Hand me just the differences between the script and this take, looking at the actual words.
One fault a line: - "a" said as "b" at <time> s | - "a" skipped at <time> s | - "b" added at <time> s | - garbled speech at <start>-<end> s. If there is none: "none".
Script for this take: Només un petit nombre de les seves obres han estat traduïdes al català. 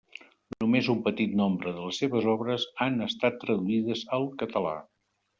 none